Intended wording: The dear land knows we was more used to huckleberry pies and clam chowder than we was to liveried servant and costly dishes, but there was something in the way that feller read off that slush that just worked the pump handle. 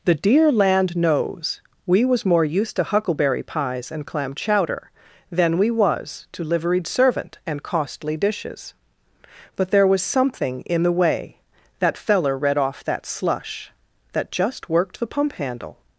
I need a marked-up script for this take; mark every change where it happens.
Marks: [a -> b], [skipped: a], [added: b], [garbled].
The dear land knows we was more used to huckleberry pies and clam chowder than we was to liveried servant and costly dishes, but there was something in the way that feller read off that slush that just worked the pump handle.